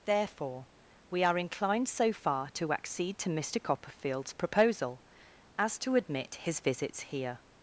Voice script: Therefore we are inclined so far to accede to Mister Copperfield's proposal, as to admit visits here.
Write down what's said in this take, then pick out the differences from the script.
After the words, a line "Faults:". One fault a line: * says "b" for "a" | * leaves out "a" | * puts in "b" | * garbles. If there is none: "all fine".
Therefore we are inclined so far to accede to Mister Copperfield's proposal, as to admit his visits here.
Faults:
* puts in "his"